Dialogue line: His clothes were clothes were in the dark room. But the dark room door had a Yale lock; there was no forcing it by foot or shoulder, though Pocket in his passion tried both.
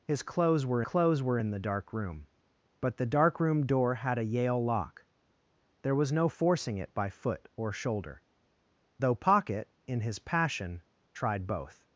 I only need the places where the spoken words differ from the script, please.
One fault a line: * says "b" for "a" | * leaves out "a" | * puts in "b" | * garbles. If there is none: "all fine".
all fine